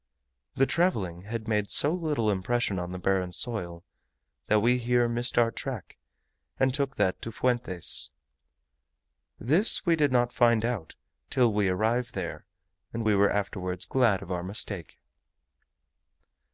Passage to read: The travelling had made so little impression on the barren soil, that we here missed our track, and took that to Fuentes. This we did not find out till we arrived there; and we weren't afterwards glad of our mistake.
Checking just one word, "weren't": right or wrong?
wrong